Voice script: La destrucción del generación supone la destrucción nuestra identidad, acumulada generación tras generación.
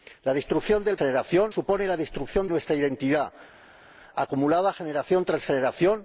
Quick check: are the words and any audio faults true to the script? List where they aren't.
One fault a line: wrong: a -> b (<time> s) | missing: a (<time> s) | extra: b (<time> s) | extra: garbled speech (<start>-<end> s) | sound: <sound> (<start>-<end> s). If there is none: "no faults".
no faults